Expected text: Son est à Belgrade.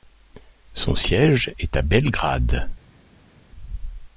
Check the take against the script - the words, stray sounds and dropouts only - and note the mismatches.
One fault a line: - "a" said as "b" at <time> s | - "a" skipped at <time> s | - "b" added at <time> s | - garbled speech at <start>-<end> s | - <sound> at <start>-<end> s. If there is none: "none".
- "siège" added at 0.9 s